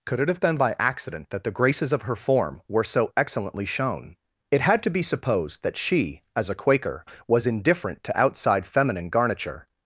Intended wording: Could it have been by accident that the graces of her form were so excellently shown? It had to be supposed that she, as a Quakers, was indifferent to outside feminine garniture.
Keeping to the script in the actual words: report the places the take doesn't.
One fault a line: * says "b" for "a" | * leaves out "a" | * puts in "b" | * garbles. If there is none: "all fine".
* says "Quaker" for "Quakers"